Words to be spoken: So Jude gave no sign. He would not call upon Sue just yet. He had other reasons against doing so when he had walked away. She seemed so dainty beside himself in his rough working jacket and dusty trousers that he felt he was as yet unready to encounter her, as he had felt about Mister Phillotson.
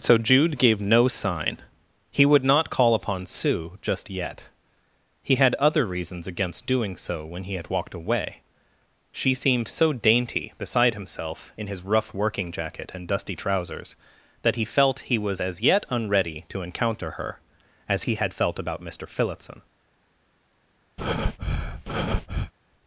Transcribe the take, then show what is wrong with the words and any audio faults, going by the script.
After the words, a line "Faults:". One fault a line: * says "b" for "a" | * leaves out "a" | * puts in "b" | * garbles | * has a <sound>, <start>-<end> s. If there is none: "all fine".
So Jude gave no sign. He would not call upon Sue just yet. He had other reasons against doing so when he had walked away. She seemed so dainty beside himself in his rough working jacket and dusty trousers that he felt he was as yet unready to encounter her, as he had felt about Mister Phillotson.
Faults:
* has a breath, 21.0-22.5 s